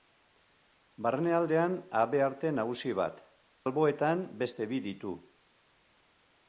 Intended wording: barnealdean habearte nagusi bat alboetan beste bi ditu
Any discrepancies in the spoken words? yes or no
no